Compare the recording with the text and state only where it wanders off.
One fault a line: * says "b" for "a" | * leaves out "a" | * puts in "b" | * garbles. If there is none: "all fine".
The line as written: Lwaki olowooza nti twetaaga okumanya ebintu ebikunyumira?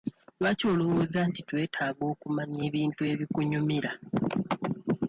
all fine